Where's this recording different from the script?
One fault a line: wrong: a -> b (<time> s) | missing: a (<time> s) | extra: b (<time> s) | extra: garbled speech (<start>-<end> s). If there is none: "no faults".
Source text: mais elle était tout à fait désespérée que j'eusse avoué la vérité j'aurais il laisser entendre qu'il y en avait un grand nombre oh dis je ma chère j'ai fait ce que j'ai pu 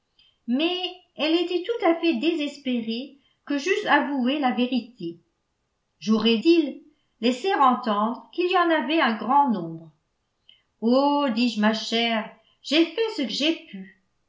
no faults